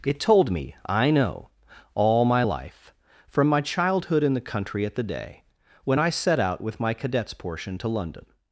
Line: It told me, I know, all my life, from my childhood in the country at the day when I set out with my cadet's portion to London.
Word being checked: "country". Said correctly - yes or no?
yes